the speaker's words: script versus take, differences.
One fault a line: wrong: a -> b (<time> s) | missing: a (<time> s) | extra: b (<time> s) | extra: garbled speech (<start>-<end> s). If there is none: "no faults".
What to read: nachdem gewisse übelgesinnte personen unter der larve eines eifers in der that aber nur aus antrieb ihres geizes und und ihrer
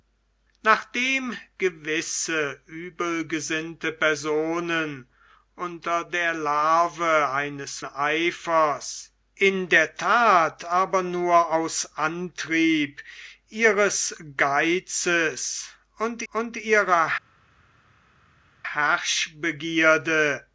no faults